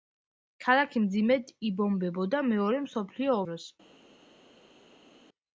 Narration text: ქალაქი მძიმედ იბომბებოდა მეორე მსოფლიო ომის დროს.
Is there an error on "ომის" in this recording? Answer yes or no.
yes